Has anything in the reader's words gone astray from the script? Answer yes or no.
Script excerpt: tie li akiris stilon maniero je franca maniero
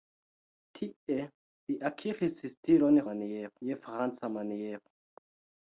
no